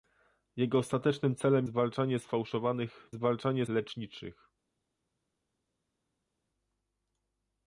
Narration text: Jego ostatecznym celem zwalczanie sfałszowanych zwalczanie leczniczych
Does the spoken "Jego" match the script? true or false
true